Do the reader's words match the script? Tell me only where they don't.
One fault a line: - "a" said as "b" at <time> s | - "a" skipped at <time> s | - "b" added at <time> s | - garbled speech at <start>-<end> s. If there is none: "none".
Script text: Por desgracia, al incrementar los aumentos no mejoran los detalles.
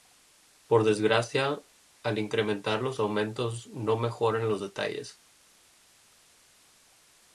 none